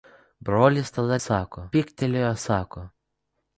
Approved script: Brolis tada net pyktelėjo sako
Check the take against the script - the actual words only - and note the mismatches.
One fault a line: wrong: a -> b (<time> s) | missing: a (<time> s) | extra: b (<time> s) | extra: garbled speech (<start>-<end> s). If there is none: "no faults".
wrong: net -> sako (1.3 s)